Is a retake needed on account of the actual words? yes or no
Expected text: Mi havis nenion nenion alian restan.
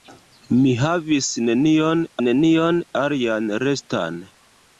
no